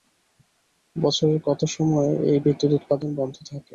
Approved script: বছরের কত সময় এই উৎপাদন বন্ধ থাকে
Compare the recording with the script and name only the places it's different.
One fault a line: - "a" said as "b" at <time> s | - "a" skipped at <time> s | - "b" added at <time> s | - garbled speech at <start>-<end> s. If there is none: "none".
- "বিদ্যুৎ" added at 2.4 s